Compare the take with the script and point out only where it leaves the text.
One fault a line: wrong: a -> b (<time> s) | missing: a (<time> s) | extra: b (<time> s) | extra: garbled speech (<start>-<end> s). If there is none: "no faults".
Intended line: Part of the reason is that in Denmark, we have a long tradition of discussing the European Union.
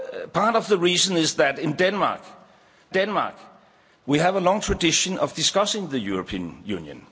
extra: Denmark (2.9 s)